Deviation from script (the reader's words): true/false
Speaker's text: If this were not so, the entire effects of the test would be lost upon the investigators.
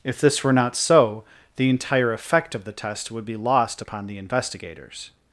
true